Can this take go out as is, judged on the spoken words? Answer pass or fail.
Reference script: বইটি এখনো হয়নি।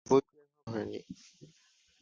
pass